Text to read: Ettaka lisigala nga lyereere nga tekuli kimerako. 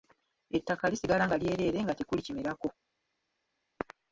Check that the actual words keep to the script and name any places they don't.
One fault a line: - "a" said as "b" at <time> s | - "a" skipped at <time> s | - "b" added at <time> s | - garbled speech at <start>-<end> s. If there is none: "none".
none